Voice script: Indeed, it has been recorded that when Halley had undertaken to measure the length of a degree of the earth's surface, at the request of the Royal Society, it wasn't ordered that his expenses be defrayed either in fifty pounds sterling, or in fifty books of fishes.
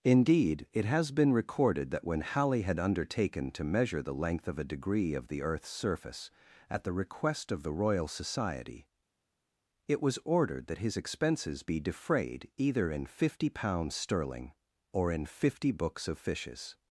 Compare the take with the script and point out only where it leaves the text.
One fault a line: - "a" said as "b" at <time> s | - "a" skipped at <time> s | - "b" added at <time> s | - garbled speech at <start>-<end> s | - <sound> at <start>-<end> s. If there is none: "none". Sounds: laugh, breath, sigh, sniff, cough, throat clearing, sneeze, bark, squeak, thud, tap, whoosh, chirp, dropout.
- "wasn't" said as "was" at 10.0 s